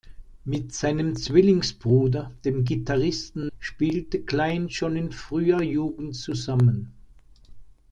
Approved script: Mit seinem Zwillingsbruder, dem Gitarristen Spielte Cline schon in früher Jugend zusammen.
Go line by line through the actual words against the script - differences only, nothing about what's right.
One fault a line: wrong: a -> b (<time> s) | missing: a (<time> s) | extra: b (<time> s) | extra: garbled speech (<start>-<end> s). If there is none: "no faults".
no faults